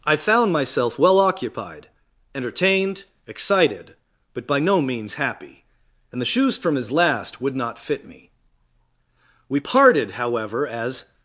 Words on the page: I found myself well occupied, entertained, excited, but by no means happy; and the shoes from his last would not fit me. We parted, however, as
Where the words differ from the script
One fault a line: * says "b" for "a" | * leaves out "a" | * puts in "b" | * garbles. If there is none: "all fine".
all fine